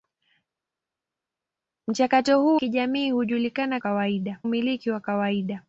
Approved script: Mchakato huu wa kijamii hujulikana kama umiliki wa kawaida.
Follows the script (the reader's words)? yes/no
no